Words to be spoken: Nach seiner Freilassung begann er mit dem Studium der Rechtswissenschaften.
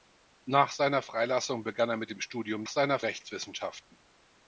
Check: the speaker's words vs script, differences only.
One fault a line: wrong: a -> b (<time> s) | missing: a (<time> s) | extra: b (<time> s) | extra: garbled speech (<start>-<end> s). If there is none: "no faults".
wrong: der -> seiner (2.7 s)